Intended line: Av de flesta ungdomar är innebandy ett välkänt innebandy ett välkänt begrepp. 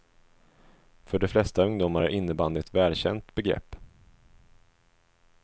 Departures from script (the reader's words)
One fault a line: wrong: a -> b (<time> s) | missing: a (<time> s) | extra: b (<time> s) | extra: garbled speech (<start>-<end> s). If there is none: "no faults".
wrong: Av -> För (1.0 s)
missing: innebandy ett välkänt (3.3 s)